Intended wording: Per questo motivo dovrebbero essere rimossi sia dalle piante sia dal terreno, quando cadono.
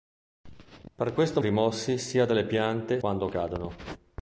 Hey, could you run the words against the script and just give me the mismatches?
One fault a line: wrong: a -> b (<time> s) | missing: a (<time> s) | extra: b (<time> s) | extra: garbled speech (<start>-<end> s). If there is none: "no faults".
missing: motivo dovrebbero essere (1.4 s)
missing: sia dal terreno (3.0 s)